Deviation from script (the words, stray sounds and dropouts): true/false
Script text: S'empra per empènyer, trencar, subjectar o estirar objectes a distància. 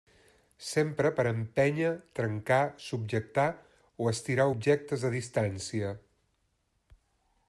false